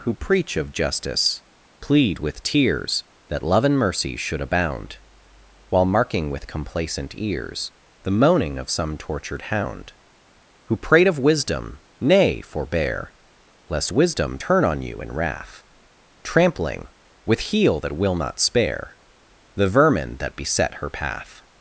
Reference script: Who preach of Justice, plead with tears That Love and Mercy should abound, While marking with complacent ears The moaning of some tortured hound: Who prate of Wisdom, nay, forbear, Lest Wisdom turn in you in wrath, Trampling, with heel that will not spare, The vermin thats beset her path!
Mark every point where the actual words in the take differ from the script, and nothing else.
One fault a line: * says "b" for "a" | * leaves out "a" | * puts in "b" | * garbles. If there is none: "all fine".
* says "on" for "in"
* says "that" for "thats"